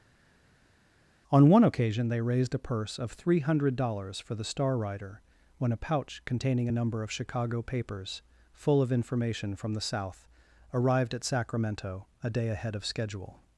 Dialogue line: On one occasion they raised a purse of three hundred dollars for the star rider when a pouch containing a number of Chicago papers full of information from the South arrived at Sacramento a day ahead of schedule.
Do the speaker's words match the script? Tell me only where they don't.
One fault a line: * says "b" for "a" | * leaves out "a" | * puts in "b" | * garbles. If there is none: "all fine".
all fine